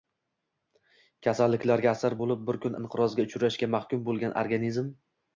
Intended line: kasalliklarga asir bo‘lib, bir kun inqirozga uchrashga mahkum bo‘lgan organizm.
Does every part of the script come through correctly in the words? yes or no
yes